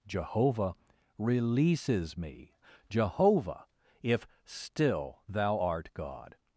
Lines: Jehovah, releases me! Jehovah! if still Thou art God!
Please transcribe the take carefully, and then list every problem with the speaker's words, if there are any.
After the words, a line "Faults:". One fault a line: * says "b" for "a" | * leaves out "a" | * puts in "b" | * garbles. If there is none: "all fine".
Jehovah, releases me! Jehovah! if still Thou art God!
Faults:
all fine